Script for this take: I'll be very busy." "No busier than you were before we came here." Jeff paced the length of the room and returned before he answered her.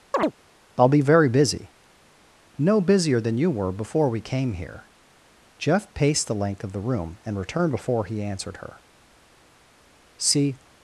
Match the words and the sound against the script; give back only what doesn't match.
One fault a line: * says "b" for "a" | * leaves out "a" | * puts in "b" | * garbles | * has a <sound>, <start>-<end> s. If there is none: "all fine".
* has a chirp, 0.1-0.3 s
* puts in "See"